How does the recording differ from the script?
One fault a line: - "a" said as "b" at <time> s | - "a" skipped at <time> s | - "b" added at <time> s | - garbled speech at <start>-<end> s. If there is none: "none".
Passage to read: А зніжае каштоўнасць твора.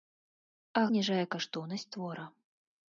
none